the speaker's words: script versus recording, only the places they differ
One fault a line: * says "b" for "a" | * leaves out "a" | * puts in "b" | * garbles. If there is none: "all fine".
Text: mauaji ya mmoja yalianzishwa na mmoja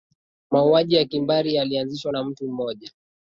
* says "kimbari" for "mmoja"
* puts in "mtu"